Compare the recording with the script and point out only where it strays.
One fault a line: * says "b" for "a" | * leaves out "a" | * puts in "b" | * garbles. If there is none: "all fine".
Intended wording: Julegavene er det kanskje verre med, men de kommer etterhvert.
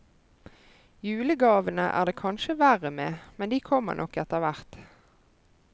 * puts in "nok"